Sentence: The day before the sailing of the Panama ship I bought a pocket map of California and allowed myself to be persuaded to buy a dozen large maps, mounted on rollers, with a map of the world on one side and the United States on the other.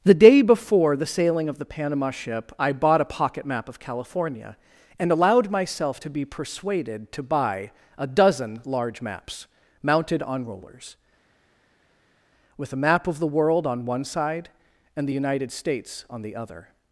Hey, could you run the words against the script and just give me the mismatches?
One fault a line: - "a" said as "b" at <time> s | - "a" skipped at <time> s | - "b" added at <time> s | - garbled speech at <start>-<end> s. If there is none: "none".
none